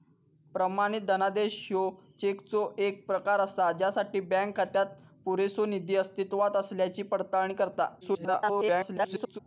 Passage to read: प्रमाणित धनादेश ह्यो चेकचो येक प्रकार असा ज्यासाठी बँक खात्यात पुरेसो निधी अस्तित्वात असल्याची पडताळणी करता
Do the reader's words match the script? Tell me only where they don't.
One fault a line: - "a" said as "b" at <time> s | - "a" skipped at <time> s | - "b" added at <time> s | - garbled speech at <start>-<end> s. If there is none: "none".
- garbled speech at 8.0-9.4 s